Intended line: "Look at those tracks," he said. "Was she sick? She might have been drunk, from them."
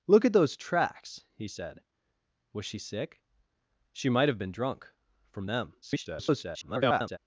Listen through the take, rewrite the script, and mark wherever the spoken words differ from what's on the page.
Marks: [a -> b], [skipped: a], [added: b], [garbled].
"Look at those tracks," he said. "Was she sick? She might have been drunk, from them." [garbled]